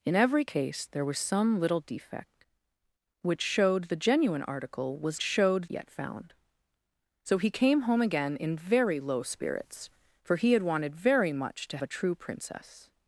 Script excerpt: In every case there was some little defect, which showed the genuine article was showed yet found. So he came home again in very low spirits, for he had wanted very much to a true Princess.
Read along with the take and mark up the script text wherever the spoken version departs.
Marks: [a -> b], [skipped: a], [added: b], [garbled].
In every case there was some little defect, which showed the genuine article was showed yet found. So he came home again in very low spirits, for he had wanted very much to a true Princess.